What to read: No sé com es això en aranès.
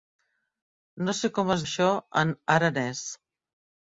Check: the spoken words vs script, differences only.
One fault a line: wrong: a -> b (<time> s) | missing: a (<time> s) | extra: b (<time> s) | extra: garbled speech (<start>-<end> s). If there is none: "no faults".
no faults